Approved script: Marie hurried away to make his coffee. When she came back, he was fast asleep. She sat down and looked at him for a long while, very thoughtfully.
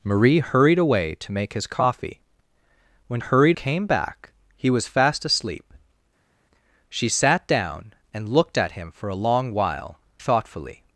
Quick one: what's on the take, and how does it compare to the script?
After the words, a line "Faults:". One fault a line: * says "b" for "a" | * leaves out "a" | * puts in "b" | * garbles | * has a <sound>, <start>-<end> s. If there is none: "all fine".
Marie hurried away to make his coffee. When hurried came back, he was fast asleep. She sat down and looked at him for a long while, thoughtfully.
Faults:
* says "hurried" for "she"
* leaves out "very"